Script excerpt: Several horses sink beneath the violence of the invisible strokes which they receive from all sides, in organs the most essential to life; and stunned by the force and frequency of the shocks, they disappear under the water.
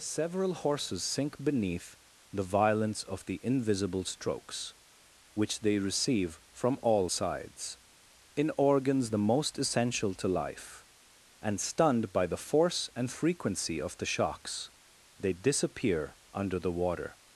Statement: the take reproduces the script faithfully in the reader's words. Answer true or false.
true